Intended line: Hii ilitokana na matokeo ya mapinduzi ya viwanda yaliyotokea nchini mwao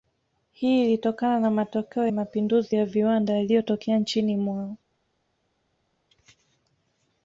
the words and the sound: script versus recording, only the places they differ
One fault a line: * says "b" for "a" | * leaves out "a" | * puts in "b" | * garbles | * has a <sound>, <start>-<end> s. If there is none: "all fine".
* leaves out "ya"